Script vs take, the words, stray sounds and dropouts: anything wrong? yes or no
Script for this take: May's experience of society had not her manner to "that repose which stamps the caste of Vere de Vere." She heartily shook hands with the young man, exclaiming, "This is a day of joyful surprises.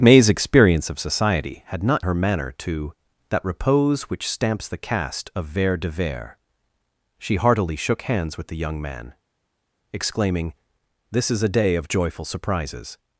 no